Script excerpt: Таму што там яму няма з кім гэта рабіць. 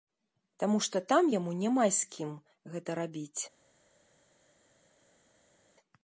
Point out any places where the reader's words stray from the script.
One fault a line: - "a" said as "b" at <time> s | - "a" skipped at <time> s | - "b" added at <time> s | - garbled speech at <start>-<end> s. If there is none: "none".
none